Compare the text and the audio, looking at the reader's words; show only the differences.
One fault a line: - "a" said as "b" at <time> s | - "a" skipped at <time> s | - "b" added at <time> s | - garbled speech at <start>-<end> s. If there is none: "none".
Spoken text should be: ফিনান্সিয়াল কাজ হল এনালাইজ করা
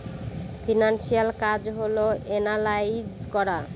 none